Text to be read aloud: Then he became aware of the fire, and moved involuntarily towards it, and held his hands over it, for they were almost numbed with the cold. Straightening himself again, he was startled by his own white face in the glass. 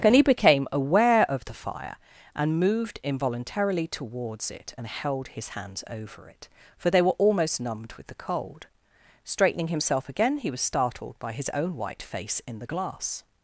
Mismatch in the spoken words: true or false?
true